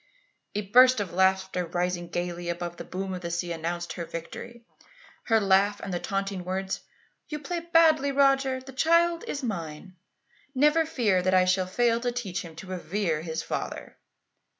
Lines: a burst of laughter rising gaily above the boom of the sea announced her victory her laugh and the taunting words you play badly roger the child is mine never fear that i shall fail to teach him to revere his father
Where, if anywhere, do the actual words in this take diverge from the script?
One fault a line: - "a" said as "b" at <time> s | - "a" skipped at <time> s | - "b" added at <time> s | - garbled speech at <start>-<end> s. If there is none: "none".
none